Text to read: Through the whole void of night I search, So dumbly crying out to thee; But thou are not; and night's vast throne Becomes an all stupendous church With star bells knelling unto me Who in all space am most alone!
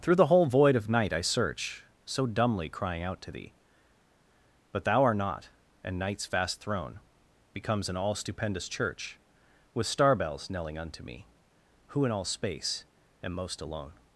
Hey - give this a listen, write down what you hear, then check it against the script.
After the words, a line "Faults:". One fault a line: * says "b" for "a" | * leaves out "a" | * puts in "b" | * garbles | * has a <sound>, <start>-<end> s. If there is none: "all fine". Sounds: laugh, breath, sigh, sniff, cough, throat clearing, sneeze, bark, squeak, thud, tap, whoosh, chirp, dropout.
Through the whole void of night I search, So dumbly crying out to thee; But thou art not; and night's vast throne Becomes an all stupendous church With star bells knelling unto me Who in all space am most alone!
Faults:
* says "art" for "are"